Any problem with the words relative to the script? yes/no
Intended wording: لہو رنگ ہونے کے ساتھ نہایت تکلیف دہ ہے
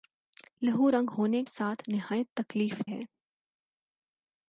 yes